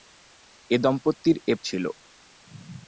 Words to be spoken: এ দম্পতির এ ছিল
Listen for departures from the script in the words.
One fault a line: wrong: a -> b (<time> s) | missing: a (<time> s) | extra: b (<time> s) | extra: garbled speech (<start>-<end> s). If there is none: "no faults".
no faults